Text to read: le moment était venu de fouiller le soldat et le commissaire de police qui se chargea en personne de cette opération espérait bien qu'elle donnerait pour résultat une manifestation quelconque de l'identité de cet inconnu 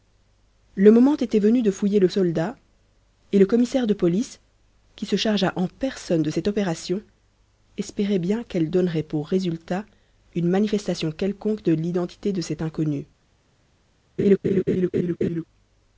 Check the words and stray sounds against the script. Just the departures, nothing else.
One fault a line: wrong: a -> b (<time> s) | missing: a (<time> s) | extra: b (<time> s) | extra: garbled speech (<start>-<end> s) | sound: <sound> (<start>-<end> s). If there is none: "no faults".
sound: laugh (14.2-15.4 s)